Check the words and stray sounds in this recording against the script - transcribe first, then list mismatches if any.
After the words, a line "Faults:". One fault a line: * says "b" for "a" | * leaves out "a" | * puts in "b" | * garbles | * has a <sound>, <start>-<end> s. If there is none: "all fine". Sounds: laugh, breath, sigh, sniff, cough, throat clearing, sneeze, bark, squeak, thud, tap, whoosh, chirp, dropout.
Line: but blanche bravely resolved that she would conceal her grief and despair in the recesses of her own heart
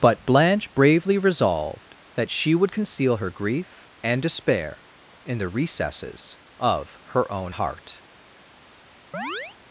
but blanche bravely resolved that she would conceal her grief and despair in the recesses of her own heart
Faults:
* has a chirp, 9.1-9.6 s